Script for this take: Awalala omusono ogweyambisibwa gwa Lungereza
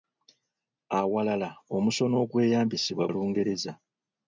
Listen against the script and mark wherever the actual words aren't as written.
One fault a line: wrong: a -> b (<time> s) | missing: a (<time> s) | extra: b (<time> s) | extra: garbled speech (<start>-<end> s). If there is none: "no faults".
missing: gwa (3.1 s)